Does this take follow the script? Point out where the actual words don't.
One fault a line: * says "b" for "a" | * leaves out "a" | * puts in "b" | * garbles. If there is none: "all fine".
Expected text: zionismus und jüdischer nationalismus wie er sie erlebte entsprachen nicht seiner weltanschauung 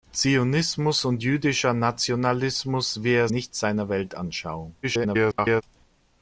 * leaves out "sie erlebte entsprachen"
* garbles